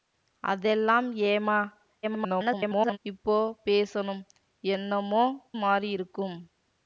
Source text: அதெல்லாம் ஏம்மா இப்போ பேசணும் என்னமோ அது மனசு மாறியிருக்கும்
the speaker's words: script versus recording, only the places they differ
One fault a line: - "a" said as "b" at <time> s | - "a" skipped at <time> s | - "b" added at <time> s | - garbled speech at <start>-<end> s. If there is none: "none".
- garbled speech at 2.0-3.0 s
- "அது மனசு" skipped at 5.2 s